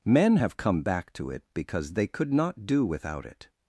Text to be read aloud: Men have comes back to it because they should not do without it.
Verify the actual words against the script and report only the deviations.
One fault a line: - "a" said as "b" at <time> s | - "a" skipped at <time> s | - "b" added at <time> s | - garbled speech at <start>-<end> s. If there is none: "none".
- "comes" said as "come" at 0.6 s
- "should" said as "could" at 2.1 s